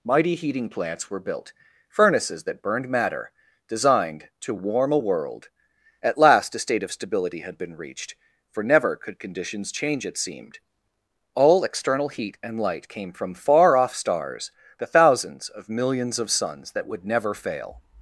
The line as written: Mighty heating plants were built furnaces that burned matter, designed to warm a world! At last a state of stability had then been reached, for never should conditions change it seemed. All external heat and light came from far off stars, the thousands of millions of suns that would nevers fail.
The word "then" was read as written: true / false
false